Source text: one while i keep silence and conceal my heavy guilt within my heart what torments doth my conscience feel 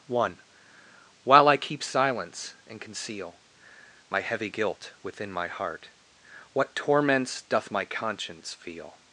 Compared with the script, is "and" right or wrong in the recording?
right